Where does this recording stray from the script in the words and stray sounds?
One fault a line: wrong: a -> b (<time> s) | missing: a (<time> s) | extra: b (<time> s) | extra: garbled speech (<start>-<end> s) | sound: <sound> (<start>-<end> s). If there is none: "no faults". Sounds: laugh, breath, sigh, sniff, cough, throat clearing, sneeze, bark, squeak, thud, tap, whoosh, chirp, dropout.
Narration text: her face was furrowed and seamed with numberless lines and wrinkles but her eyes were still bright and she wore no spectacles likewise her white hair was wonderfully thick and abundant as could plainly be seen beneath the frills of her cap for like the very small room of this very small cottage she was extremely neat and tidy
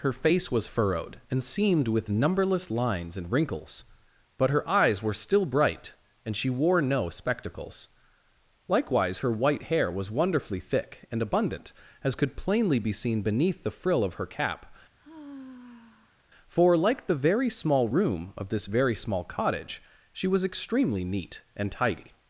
wrong: frills -> frill (13.7 s)
sound: sigh (15.0-16.2 s)